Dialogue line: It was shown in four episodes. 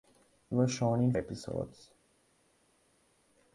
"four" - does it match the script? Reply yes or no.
no